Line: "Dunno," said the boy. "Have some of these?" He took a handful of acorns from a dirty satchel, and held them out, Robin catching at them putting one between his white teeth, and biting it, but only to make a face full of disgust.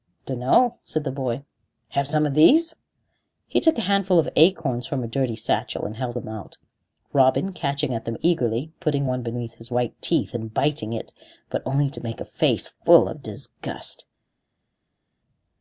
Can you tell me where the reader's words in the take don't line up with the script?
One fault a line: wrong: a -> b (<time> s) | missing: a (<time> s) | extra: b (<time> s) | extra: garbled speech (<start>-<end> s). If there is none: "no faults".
extra: eagerly (8.2 s)